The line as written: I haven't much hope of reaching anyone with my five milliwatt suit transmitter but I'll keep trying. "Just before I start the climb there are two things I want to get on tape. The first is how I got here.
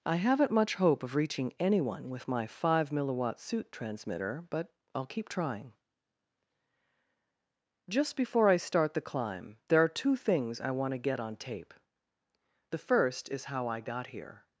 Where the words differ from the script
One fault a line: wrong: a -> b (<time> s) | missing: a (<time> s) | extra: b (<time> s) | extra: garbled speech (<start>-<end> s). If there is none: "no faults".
no faults